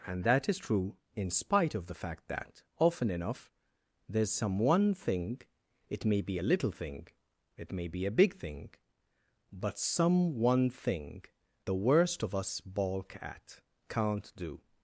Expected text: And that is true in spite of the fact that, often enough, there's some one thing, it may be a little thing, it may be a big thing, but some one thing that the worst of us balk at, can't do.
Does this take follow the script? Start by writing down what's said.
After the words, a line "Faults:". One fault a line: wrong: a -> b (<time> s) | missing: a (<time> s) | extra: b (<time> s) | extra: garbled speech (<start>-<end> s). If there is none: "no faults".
And that is true in spite of the fact that, often enough, there's some one thing, it may be a little thing, it may be a big thing, but some one thing the worst of us balk at, can't do.
Faults:
missing: that (11.2 s)